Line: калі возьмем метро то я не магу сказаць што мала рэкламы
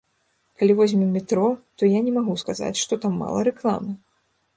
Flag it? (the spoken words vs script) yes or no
yes